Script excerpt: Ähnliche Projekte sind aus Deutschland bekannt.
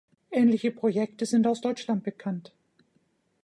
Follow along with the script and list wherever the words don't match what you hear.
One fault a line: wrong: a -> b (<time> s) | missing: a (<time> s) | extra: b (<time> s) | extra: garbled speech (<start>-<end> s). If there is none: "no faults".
no faults